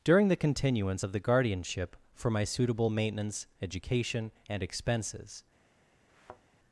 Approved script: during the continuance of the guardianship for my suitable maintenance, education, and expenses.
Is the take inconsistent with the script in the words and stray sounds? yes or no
yes